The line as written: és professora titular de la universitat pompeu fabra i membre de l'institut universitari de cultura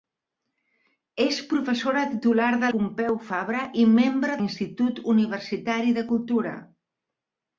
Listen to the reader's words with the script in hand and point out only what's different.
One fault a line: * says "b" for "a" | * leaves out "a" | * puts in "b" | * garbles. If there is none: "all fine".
* leaves out "la universitat"
* leaves out "de"